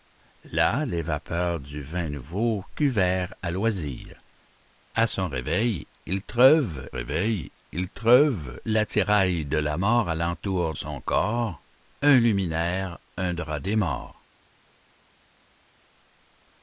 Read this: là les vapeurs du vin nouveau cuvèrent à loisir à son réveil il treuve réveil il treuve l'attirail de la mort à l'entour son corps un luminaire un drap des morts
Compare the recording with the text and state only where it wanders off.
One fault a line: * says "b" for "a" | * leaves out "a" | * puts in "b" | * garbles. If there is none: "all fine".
all fine